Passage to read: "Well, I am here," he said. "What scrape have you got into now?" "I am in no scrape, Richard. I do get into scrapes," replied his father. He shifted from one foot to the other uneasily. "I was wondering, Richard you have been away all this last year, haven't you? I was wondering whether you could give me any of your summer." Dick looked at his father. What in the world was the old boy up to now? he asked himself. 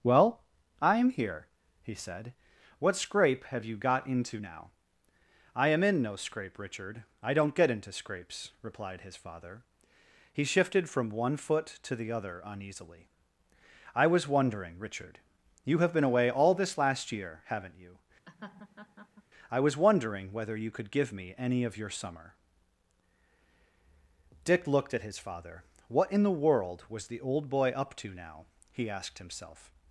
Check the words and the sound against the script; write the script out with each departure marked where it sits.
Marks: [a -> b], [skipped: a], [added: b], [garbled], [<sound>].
"Well, I am here," he said. "What scrape have you got into now?" "I am in no scrape, Richard. I [do -> don't] get into scrapes," replied his father. He shifted from one foot to the other uneasily. "I was wondering, Richard you have been away all this last year, haven't you? [laugh] I was wondering whether you could give me any of your summer." Dick looked at his father. What in the world was the old boy up to now? he asked himself.